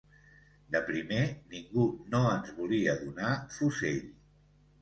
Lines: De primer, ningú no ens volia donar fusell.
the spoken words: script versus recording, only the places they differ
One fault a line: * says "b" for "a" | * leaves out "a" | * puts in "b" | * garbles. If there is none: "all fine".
all fine